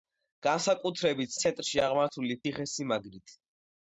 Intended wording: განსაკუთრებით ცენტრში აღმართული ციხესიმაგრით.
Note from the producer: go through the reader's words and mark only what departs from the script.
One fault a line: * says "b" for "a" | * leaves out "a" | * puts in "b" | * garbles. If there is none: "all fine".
all fine